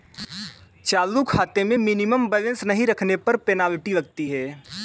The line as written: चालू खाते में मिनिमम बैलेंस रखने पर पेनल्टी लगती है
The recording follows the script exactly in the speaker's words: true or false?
false